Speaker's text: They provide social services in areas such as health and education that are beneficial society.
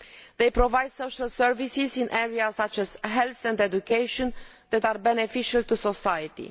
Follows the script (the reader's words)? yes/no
no